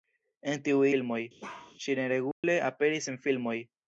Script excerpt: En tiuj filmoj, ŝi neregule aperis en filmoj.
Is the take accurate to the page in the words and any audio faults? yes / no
no